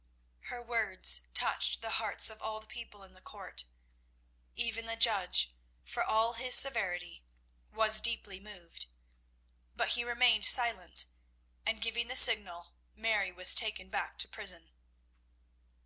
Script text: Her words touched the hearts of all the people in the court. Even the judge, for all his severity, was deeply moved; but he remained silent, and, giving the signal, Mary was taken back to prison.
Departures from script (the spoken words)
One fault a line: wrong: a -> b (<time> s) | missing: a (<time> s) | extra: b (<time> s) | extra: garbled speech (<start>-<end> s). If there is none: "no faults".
no faults